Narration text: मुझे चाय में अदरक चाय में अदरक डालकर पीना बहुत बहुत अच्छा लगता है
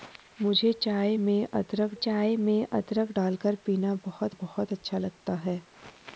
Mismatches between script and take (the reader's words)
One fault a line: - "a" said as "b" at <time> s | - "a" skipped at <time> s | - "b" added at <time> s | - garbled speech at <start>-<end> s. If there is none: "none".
none